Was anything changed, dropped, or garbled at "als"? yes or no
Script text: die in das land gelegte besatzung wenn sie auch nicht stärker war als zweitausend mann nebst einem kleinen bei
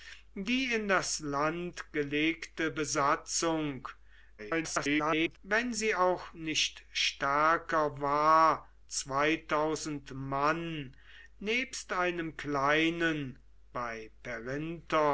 yes